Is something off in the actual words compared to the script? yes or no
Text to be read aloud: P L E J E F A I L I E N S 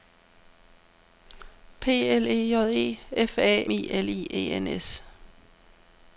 no